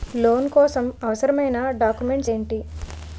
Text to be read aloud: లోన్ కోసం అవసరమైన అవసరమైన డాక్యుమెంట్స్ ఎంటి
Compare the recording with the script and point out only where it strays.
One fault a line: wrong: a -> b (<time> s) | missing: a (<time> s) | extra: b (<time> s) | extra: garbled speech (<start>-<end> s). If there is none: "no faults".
missing: అవసరమైన (1.6 s)